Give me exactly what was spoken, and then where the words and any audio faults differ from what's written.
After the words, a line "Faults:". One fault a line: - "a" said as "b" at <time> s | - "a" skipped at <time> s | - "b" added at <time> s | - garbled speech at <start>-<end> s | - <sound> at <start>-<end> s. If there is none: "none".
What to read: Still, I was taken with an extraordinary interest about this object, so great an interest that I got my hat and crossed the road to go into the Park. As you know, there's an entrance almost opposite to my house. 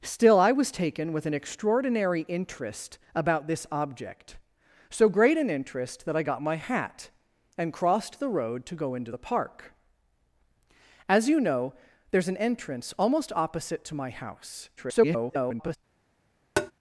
Still, I was taken with an extraordinary interest about this object, so great an interest that I got my hat and crossed the road to go into the Park. As you know, there's an entrance almost opposite to my house. [garbled]
Faults:
- garbled speech at 14.8-15.8 s
- tap at 16.6-16.7 s